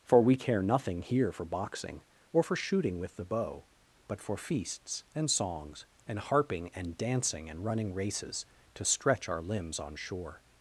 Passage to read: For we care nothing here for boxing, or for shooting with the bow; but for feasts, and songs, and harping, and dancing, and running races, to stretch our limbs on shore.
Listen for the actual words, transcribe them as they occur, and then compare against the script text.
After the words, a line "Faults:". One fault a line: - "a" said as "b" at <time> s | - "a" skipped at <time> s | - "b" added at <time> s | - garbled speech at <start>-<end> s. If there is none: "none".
For we care nothing here for boxing, or for shooting with the bow; but for feasts, and songs, and harping, and dancing, and running races, to stretch our limbs on shore.
Faults:
none